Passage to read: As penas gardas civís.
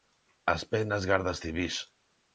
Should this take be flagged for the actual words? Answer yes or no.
no